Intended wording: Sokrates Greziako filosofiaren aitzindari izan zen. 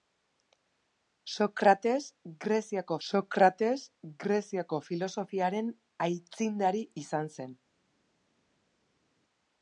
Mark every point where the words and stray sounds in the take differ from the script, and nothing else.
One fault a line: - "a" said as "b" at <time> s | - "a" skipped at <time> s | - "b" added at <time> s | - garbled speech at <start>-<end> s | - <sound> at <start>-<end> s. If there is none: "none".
- "sokrates Greziako" added at 3.1 s